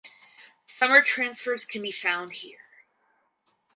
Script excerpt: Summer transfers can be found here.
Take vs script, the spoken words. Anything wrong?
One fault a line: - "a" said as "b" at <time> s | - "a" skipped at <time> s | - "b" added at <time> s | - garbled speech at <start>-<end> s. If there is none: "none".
none